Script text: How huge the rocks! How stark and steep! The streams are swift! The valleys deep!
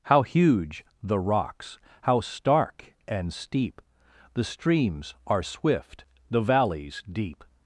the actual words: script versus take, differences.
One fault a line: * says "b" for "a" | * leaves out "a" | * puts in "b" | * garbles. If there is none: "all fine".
all fine